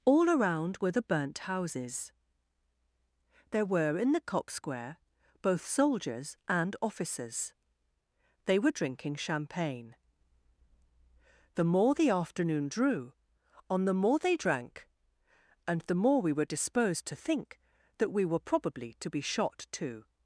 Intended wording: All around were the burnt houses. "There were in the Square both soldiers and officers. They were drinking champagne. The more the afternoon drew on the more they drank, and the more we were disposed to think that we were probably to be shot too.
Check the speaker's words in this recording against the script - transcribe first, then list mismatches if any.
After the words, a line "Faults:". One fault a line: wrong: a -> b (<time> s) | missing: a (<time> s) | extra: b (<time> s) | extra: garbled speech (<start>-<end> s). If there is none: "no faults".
All around were the burnt houses. "There were in the cock Square both soldiers and officers. They were drinking champagne. The more the afternoon drew on the more they drank, and the more we were disposed to think that we were probably to be shot too.
Faults:
extra: cock (4.2 s)